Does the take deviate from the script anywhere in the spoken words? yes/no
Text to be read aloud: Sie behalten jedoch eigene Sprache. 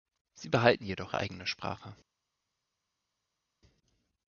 no